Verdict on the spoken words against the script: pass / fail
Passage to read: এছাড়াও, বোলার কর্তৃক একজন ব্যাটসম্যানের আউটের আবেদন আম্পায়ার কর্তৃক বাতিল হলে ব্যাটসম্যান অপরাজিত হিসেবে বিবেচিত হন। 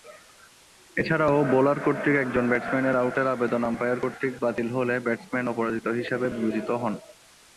pass